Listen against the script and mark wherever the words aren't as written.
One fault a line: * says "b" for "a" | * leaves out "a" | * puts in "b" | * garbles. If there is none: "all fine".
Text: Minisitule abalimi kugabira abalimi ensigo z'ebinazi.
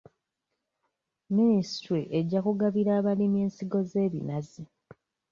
* says "ejja" for "abalimi"